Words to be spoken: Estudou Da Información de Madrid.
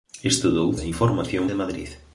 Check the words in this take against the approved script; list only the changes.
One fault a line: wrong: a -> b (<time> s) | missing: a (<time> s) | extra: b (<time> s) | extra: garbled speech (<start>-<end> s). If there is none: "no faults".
no faults